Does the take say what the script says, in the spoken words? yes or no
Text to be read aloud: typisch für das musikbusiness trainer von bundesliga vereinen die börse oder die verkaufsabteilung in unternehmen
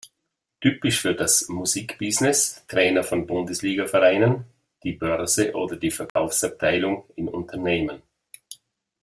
yes